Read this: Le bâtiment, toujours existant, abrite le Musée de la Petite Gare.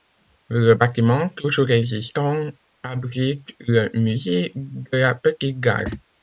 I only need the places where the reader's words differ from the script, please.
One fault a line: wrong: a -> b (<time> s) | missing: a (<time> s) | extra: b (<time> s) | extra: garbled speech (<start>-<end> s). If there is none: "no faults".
no faults